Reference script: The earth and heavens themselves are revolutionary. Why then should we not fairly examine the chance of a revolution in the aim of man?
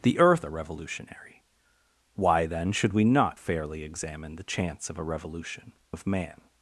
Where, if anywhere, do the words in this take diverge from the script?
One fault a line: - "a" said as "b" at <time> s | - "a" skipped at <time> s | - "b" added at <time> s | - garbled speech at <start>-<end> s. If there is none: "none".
- "and heavens themselves" skipped at 0.5 s
- "in the aim" skipped at 5.7 s